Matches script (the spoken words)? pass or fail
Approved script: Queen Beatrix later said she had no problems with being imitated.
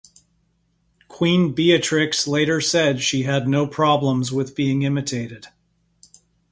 pass